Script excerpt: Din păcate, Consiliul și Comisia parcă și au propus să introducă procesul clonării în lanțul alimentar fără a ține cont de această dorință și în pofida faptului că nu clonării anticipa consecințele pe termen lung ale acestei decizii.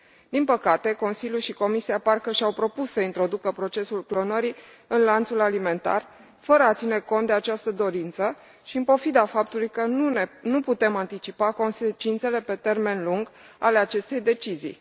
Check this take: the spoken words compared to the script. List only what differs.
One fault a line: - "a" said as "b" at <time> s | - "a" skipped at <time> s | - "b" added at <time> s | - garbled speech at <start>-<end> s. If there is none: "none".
- "clonării" said as "putem" at 10.6 s